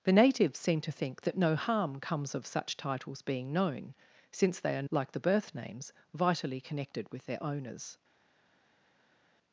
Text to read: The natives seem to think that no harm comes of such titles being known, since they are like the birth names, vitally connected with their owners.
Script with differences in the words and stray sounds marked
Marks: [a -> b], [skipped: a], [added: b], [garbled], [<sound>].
The natives seem to think that no harm comes of such titles being known, since they are like the birth names, vitally connected with their owners.